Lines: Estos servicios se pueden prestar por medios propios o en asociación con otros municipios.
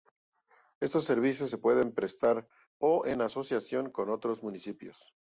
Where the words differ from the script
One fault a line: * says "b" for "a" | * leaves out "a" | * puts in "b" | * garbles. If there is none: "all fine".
* leaves out "por medios propios"